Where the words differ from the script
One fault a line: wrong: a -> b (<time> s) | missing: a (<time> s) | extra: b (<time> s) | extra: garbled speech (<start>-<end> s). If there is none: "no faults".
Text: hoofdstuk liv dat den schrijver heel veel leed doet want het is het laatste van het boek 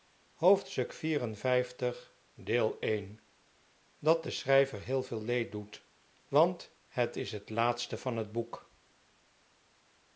no faults